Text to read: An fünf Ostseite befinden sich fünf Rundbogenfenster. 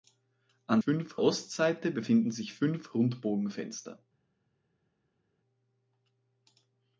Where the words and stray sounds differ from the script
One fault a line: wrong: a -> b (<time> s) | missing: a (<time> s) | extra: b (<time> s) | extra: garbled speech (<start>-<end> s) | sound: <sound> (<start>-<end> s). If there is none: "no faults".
no faults